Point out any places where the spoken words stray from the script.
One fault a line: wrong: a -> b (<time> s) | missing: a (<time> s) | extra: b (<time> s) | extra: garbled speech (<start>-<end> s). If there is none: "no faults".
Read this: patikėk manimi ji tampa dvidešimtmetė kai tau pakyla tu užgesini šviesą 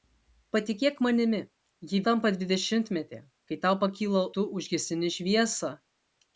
no faults